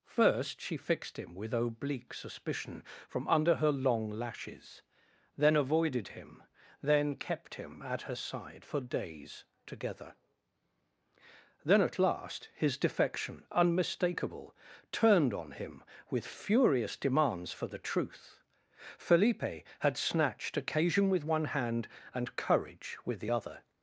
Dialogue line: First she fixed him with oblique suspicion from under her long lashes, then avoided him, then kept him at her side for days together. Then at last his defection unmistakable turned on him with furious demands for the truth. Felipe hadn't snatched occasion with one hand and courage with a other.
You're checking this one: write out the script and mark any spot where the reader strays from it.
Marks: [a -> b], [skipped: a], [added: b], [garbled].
First she fixed him with oblique suspicion from under her long lashes, then avoided him, then kept him at her side for days together. Then at last his defection unmistakable turned on him with furious demands for the truth. Felipe [hadn't -> had] snatched occasion with one hand and courage with [a -> the] other.